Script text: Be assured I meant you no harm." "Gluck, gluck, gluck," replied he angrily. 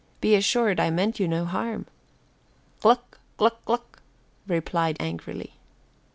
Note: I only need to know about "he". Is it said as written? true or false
false